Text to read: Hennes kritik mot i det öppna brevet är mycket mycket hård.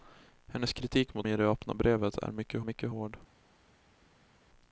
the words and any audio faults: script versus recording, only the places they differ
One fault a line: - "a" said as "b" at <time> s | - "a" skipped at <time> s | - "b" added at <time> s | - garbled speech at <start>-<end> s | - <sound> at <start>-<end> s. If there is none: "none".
none